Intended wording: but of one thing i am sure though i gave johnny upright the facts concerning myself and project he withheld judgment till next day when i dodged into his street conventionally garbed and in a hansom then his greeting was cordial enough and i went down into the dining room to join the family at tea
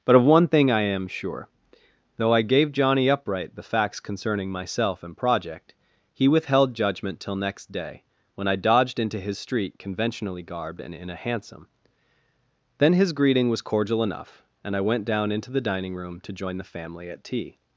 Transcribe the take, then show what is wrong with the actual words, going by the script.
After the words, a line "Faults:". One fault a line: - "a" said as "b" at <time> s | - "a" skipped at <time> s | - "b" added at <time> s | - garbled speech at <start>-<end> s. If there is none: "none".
but of one thing i am sure though i gave johnny upright the facts concerning myself and project he withheld judgment till next day when i dodged into his street conventionally garbed and in a hansom then his greeting was cordial enough and i went down into the dining room to join the family at tea
Faults:
none